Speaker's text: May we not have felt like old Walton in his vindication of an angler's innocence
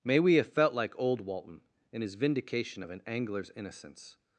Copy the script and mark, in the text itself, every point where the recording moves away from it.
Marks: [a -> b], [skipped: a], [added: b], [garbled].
May we [skipped: not] have felt like old Walton in his vindication of an angler's innocence